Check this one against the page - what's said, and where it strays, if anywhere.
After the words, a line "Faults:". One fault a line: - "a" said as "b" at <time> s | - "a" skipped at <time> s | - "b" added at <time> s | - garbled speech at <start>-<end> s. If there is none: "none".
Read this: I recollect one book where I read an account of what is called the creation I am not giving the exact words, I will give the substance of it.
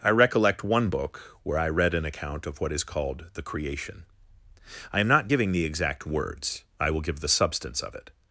I recollect one book where I read an account of what is called the creation I am not giving the exact words, I will give the substance of it.
Faults:
none